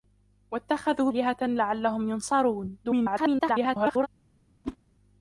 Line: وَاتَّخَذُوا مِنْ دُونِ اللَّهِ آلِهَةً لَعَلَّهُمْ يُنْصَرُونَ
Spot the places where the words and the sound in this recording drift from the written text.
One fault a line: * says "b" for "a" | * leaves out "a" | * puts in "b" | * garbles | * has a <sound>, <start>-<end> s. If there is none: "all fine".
* leaves out "مِنْ دُونِ اللَّهِ"
* garbles
* has a whoosh, 4.6-4.8 s